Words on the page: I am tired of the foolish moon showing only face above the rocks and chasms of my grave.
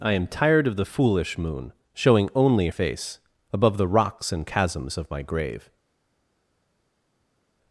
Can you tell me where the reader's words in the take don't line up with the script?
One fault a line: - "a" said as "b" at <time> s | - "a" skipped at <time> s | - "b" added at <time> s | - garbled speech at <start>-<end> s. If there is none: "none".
none